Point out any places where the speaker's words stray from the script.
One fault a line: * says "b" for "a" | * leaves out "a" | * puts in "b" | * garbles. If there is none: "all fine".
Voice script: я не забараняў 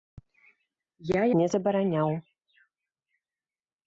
all fine